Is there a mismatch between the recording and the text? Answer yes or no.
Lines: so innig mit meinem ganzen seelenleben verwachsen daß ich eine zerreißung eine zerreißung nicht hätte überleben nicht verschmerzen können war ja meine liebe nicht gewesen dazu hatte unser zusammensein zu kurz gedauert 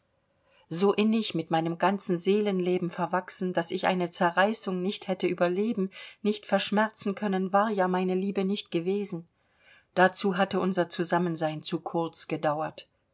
yes